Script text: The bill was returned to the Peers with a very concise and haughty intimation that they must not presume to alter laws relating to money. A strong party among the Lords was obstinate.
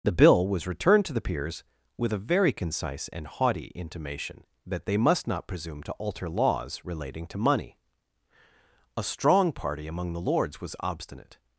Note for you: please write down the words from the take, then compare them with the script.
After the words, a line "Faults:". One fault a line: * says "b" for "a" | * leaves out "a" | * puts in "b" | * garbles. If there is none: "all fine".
The bill was returned to the Peers with a very concise and haughty intimation that they must not presume to alter laws relating to money. A strong party among the Lords was obstinate.
Faults:
all fine